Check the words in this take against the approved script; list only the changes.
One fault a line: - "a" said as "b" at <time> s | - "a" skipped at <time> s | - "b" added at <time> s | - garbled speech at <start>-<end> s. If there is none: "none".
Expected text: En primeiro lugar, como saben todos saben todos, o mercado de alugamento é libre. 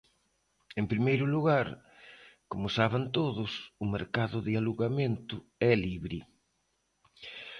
- "saben todos" skipped at 3.5 s